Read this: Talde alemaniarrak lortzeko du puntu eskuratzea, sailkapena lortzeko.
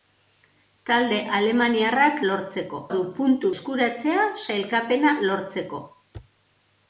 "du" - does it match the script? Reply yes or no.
yes